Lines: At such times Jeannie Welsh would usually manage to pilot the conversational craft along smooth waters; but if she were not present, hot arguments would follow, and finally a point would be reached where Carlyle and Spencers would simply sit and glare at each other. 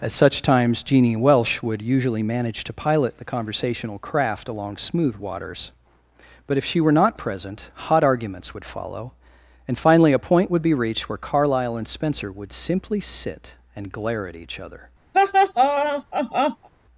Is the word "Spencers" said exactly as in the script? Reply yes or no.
no